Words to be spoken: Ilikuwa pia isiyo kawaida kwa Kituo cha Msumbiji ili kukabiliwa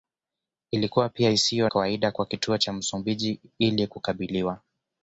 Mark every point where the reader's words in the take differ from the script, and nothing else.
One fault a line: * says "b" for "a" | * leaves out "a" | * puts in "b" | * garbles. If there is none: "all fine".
all fine